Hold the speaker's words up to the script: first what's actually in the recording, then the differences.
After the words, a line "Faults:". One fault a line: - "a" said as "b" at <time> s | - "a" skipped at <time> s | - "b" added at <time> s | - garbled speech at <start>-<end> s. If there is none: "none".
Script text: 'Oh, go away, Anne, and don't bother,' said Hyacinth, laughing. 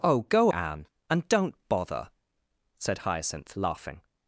'Oh, go Anne, and don't bother,' said Hyacinth, laughing.
Faults:
- "away" skipped at 0.5 s